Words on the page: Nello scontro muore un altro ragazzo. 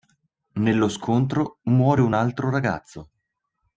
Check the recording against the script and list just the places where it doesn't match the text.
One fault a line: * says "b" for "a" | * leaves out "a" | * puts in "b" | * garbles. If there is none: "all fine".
all fine